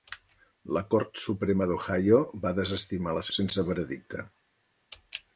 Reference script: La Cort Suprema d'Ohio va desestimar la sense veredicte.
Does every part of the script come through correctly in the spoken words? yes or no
yes